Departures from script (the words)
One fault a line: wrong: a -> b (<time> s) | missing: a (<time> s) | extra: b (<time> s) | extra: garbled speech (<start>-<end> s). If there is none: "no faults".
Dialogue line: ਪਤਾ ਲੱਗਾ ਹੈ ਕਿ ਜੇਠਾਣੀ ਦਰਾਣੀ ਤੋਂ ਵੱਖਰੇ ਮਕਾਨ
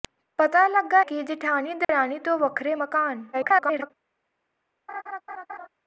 missing: ਹੈ (1.0 s)
extra: garbled speech (3.3-3.9 s)